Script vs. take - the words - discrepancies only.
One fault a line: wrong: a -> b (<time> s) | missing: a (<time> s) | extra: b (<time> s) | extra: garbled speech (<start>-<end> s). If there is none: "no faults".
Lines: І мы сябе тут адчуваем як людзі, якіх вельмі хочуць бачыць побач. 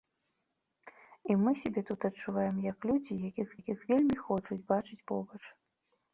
extra: якіх (3.6 s)